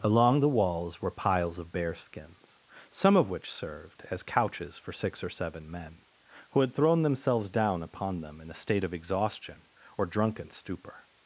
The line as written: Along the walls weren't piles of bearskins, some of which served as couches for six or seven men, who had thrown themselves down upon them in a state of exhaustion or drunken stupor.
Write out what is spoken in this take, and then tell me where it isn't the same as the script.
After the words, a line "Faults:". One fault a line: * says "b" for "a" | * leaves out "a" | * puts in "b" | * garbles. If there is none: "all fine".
Along the walls were piles of bearskins, some of which served as couches for six or seven men, who had thrown themselves down upon them in a state of exhaustion or drunken stupor.
Faults:
* says "were" for "weren't"